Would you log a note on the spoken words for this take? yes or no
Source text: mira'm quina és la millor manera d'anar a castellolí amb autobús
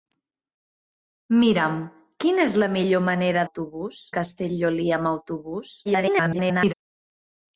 yes